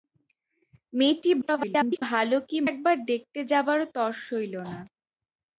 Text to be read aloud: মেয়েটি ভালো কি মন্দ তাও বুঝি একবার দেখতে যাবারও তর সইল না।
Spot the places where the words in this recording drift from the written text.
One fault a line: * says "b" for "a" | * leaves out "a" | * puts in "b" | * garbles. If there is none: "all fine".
* garbles
* leaves out "মন্দ তাও বুঝি"